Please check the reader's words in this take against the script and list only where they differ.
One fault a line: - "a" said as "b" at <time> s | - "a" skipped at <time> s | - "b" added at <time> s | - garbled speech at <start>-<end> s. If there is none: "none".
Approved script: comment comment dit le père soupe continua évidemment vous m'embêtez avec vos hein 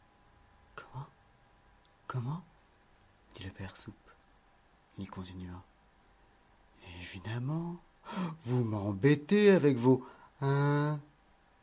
- "il" added at 5.0 s